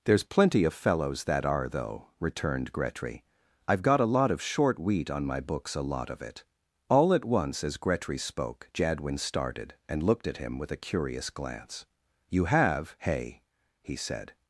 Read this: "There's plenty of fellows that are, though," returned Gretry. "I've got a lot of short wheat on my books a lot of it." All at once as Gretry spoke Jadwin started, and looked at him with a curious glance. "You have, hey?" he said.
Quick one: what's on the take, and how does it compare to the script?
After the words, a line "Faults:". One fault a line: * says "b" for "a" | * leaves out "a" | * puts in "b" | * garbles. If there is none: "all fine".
"There's plenty of fellows that are, though," returned Gretry. "I've got a lot of short wheat on my books a lot of it." All at once as Gretry spoke Jadwin started, and looked at him with a curious glance. "You have, hey?" he said.
Faults:
all fine